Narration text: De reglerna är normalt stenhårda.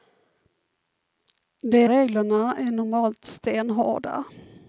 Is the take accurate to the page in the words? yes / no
yes